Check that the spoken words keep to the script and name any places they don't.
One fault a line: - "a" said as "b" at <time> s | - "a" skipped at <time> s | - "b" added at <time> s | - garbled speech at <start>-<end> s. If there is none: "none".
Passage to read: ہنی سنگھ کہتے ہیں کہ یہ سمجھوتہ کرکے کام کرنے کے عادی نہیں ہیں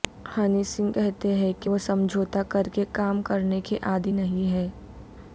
- "یہ" said as "وہ" at 1.7 s